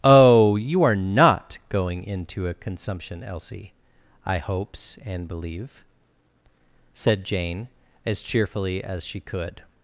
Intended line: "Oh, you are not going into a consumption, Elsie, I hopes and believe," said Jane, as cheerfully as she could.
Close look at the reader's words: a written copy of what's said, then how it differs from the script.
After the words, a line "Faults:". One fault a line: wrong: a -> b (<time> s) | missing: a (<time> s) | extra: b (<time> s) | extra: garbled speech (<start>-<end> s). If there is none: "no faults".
"Oh, you are not going into a consumption, Elsie, I hopes and believe," said Jane, as cheerfully as she could.
Faults:
no faults